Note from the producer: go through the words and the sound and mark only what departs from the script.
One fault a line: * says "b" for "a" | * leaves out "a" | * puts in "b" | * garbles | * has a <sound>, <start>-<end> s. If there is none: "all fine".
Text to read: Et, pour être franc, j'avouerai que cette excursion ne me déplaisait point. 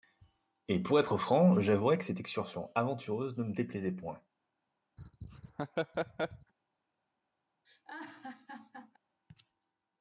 * puts in "aventureuse"
* has a laugh, 5.0-6.5 s
* has a laugh, 7.6-9.0 s